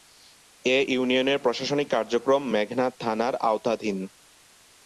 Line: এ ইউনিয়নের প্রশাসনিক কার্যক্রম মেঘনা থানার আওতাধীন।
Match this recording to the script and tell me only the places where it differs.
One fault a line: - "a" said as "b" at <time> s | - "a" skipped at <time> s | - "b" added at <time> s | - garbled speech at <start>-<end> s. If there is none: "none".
none